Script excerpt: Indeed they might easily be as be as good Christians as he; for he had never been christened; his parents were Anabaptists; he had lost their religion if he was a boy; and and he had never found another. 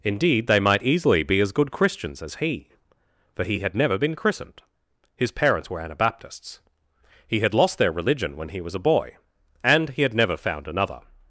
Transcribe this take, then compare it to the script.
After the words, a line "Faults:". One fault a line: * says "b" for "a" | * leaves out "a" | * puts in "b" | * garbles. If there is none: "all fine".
Indeed they might easily be as good Christians as he; for he had never been christened; his parents were Anabaptists; he had lost their religion when he was a boy; and he had never found another.
Faults:
* leaves out "be as"
* says "when" for "if"
* leaves out "and"